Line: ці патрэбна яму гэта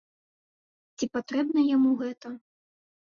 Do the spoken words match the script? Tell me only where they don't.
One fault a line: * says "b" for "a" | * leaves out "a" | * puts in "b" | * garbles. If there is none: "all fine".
all fine